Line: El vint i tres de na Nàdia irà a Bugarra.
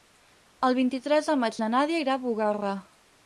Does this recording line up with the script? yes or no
no